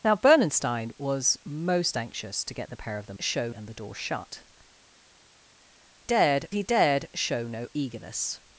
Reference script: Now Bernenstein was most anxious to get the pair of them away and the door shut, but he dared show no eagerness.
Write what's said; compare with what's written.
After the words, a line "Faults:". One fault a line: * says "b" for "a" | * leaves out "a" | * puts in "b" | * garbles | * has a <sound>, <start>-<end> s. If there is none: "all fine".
Now Bernenstein was most anxious to get the pair of them show and the door shut, dared he dared show no eagerness.
Faults:
* says "show" for "away"
* says "dared" for "but"